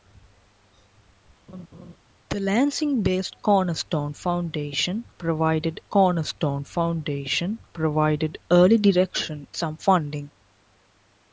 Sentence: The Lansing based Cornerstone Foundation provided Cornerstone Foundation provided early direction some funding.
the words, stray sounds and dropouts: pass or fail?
fail